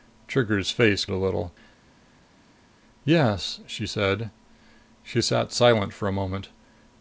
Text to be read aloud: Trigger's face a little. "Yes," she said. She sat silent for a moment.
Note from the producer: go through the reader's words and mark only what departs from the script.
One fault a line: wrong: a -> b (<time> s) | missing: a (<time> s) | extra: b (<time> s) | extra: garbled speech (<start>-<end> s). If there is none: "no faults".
no faults